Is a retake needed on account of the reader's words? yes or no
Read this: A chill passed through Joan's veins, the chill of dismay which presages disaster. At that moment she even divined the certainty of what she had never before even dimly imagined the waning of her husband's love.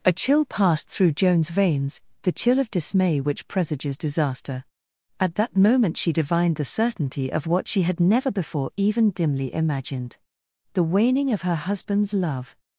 yes